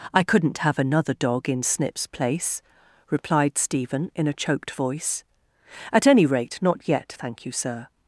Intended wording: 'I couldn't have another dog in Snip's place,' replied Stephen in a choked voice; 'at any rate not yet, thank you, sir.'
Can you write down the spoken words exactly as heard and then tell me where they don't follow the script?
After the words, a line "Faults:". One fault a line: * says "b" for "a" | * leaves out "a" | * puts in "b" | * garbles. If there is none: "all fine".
'I couldn't have another dog in Snip's place,' replied Stephen in a choked voice; 'at any rate not yet, thank you, sir.'
Faults:
all fine